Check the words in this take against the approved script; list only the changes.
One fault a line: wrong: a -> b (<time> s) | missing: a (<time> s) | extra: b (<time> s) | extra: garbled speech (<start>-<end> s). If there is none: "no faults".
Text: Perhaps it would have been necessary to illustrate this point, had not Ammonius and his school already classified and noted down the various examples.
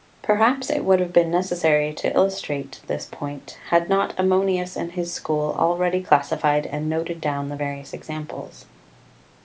no faults